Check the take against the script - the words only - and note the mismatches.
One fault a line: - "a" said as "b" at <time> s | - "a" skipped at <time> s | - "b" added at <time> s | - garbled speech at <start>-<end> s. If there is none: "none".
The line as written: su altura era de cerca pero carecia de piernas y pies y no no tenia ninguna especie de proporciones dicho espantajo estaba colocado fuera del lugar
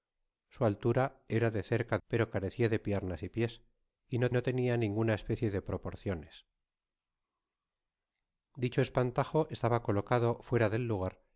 none